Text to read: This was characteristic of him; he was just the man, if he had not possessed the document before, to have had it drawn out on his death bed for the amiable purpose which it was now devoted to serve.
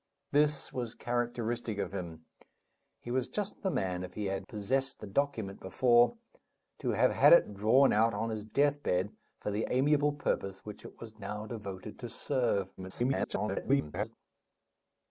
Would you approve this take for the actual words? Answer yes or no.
no